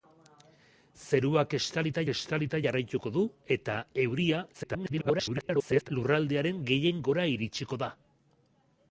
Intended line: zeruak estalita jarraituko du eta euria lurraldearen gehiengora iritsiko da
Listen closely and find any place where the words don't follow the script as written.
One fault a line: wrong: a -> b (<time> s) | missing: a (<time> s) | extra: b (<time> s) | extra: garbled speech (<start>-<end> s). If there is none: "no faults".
extra: estalita (2.1 s)
extra: garbled speech (4.5-5.9 s)